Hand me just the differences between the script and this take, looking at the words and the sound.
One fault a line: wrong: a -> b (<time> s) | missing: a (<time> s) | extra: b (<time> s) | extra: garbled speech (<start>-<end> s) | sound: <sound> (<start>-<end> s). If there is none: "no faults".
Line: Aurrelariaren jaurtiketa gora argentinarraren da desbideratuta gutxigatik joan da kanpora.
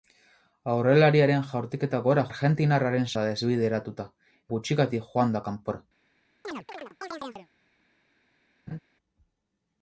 sound: chirp (6.4-7.5 s)
sound: laugh (8.7-8.8 s)